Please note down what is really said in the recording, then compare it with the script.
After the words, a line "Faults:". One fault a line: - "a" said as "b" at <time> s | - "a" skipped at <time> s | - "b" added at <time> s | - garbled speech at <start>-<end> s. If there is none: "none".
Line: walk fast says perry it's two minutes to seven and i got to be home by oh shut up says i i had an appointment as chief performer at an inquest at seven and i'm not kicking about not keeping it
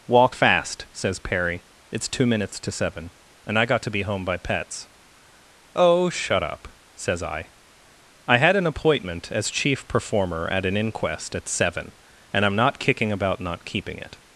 walk fast says perry it's two minutes to seven and i got to be home by pets oh shut up says i i had an appointment as chief performer at an inquest at seven and i'm not kicking about not keeping it
Faults:
- "pets" added at 4.4 s